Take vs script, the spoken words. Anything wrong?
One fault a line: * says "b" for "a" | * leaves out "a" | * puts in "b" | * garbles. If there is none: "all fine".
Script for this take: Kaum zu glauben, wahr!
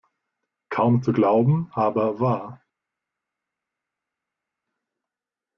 * puts in "aber"